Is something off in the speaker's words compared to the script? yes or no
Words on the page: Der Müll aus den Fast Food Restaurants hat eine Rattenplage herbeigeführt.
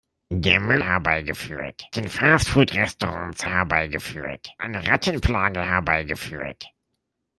yes